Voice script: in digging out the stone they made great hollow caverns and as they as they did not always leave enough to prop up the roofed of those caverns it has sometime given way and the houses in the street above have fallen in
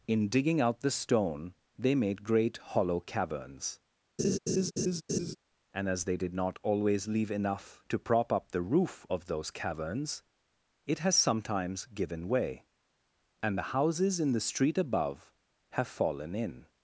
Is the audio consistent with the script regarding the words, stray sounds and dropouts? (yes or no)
no